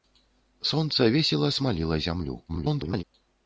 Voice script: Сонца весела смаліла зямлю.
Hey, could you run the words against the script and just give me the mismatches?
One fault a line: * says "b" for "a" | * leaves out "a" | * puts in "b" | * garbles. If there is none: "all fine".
* garbles